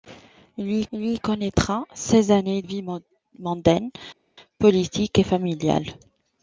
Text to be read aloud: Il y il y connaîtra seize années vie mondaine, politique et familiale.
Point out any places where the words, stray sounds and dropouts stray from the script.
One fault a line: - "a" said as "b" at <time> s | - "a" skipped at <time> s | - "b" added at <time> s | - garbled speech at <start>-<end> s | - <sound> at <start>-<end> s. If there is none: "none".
none